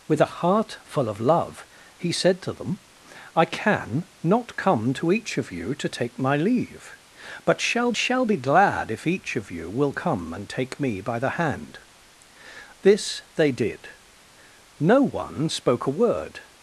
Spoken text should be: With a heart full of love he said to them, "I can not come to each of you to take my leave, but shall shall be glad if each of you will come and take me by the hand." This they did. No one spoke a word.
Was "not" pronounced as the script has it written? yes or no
yes